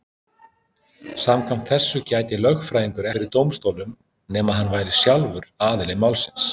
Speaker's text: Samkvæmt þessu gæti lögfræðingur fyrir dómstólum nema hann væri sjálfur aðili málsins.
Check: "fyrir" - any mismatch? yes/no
no